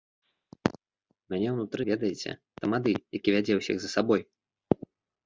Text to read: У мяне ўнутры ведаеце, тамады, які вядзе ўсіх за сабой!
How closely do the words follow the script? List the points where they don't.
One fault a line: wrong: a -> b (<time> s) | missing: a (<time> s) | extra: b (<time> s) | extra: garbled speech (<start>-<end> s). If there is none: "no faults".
no faults